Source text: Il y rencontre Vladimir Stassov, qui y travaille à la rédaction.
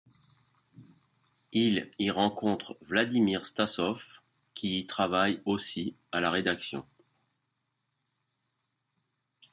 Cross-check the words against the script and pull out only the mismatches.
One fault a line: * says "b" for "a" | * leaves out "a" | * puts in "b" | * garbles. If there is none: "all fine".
* puts in "aussi"